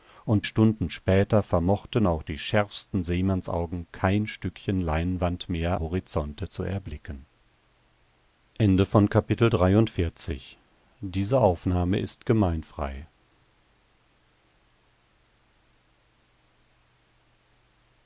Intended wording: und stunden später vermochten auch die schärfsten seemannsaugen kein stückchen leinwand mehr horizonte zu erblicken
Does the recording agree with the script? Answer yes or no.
yes